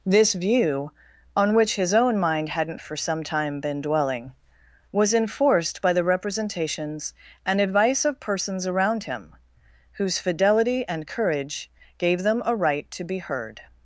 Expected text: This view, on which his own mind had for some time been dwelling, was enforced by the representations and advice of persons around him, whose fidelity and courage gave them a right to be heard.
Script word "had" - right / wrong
wrong